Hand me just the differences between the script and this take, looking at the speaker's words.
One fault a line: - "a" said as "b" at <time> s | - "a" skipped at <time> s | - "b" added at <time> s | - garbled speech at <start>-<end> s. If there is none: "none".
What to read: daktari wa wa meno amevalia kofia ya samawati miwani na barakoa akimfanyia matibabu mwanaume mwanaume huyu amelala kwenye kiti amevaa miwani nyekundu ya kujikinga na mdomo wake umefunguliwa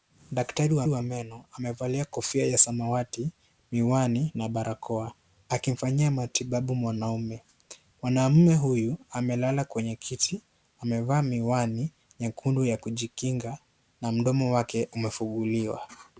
none